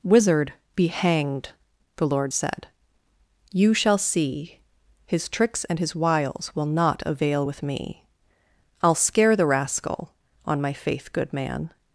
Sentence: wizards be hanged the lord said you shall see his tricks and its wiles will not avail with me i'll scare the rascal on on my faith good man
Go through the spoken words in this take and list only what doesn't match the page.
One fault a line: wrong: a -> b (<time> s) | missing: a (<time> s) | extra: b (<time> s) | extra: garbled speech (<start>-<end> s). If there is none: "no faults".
wrong: wizards -> wizard (0.0 s)
wrong: its -> his (5.8 s)
missing: on (10.6 s)